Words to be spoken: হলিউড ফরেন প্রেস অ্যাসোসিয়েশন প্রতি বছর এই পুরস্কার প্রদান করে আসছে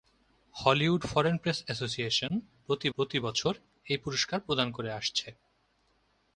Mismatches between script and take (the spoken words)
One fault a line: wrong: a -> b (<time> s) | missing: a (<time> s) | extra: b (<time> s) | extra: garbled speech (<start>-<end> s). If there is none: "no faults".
extra: প্রতি (2.9 s)